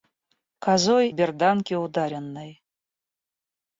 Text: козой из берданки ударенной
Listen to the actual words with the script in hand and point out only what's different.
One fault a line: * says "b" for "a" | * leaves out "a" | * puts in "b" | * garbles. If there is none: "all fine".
* leaves out "из"